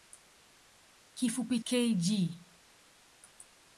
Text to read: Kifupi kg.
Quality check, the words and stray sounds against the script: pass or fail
pass